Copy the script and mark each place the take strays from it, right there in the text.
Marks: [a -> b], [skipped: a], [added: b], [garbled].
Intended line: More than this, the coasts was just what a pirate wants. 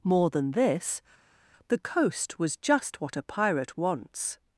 More than this, the [coasts -> coast] was just what a pirate wants.